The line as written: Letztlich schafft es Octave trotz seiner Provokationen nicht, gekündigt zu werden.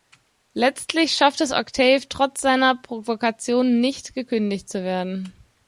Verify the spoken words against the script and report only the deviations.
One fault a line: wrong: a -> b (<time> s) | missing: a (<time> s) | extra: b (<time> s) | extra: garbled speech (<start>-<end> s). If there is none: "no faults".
no faults